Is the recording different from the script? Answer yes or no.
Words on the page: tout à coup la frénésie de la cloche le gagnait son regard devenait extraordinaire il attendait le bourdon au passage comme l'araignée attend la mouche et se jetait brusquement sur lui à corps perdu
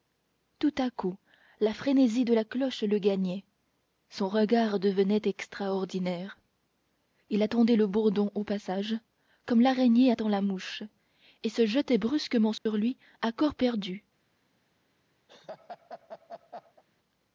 no